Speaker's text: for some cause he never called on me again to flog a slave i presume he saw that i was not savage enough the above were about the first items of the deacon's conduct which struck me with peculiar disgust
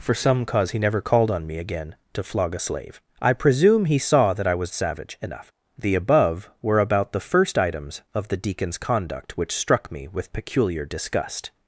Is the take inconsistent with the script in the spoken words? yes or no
yes